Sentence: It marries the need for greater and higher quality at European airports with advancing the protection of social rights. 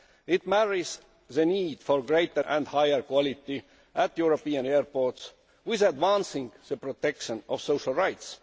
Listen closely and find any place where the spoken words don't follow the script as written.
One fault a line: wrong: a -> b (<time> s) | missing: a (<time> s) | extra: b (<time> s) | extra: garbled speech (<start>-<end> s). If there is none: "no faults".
no faults